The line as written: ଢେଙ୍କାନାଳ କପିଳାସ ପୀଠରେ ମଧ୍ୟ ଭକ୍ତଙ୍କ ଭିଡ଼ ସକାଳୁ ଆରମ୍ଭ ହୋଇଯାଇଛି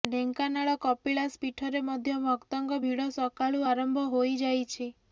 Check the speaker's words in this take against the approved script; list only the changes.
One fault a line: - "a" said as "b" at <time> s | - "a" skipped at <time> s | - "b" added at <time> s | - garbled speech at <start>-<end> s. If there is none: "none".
none